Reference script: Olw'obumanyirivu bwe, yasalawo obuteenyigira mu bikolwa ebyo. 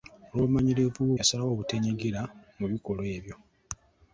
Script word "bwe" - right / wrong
wrong